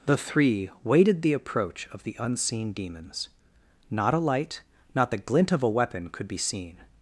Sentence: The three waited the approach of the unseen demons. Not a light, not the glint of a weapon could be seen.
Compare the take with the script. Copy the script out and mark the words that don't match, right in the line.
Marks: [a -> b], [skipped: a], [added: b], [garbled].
The three waited the approach of the unseen demons. Not a light, not the glint of a weapon could be seen.